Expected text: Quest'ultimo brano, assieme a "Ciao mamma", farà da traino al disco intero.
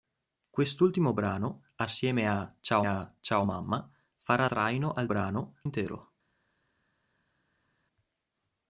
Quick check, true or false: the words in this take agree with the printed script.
false